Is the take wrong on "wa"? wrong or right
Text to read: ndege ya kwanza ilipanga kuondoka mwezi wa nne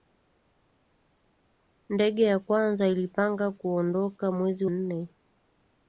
wrong